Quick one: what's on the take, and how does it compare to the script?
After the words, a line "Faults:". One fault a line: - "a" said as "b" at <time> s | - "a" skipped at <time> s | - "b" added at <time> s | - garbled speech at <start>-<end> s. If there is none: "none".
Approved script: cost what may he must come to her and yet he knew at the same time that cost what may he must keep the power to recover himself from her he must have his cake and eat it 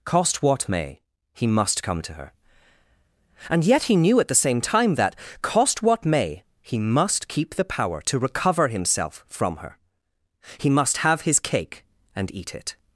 cost what may he must come to her and yet he knew at the same time that cost what may he must keep the power to recover himself from her he must have his cake and eat it
Faults:
none